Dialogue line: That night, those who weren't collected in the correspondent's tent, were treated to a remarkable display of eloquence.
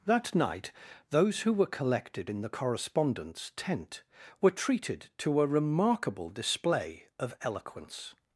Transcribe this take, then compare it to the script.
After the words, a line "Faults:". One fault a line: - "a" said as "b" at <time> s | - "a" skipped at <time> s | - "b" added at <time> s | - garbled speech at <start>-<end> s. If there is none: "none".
That night, those who were collected in the correspondent's tent, were treated to a remarkable display of eloquence.
Faults:
- "weren't" said as "were" at 1.5 s